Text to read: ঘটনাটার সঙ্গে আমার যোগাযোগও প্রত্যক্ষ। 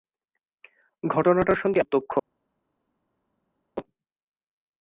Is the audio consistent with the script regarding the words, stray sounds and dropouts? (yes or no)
no